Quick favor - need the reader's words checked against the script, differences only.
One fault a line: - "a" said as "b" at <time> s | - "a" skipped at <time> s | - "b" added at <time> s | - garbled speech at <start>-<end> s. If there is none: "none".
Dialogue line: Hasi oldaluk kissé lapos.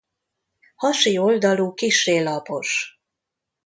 none